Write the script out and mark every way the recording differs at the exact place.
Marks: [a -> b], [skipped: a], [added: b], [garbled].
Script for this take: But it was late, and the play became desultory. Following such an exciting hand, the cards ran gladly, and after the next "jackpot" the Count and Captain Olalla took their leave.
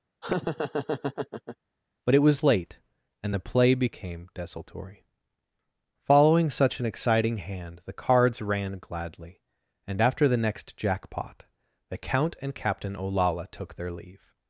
But it was late, and the play became desultory. Following such an exciting hand, the cards ran gladly, and after the next "jackpot" the Count and Captain Olalla took their leave.